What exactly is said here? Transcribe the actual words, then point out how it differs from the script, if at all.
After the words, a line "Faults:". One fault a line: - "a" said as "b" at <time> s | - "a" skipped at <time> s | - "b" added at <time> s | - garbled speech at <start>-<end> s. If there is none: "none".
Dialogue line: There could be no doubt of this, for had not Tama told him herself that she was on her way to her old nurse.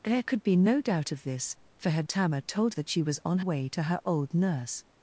There could be no doubt of this, for had Tama told that she was on way to her old nurse.
Faults:
- "not" skipped at 2.1 s
- "him herself" skipped at 2.7 s
- "her" skipped at 3.4 s